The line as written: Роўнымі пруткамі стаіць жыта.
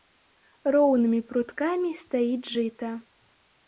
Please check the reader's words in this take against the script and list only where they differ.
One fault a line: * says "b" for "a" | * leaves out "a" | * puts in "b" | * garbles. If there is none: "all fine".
all fine